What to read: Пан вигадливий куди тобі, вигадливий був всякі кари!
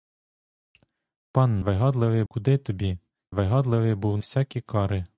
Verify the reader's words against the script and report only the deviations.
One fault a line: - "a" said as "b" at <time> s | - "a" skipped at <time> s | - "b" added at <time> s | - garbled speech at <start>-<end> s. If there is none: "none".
none